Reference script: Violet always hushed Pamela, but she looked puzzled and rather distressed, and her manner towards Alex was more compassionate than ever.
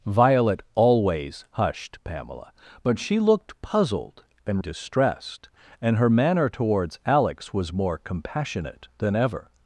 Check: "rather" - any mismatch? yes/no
yes